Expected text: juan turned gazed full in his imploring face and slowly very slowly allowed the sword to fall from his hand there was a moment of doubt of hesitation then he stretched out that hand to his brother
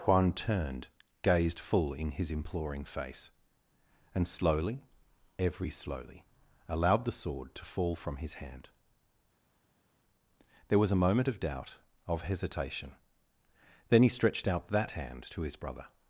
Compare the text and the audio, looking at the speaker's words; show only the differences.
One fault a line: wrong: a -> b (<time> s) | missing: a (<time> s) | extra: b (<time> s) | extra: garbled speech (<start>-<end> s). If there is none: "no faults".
wrong: very -> every (5.4 s)